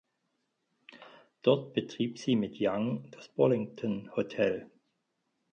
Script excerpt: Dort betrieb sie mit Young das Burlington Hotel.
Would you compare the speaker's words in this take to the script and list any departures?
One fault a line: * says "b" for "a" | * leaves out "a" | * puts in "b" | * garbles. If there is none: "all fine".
all fine